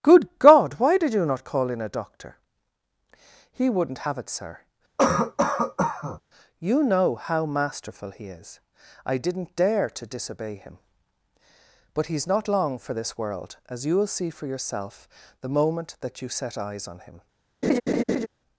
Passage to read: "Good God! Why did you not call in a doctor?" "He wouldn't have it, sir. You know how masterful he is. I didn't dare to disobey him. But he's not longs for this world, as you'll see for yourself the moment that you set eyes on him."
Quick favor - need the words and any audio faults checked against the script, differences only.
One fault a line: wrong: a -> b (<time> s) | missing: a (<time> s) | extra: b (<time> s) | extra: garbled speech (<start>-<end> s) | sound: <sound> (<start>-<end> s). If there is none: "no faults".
sound: cough (5.0-6.2 s)
wrong: longs -> long (12.5 s)
sound: laugh (17.6-18.3 s)